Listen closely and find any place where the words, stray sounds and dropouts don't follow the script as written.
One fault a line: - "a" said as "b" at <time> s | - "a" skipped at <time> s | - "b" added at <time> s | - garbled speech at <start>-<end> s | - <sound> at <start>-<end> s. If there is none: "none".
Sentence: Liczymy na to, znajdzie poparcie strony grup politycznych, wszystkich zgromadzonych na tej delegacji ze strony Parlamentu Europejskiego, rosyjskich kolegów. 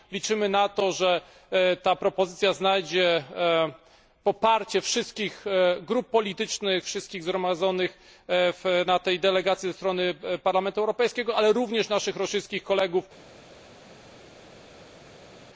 - "że ta propozycja" added at 0.9 s
- "strony" said as "wszystkich" at 4.8 s
- "ale również naszych" added at 11.4 s